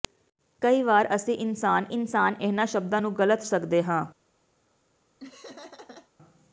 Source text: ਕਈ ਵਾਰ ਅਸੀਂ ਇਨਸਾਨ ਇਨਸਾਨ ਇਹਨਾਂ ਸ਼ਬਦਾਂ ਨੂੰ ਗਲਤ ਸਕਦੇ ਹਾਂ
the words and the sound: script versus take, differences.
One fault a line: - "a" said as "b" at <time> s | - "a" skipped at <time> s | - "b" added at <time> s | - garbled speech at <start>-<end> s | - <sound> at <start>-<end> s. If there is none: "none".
- laugh at 5.2-6.1 s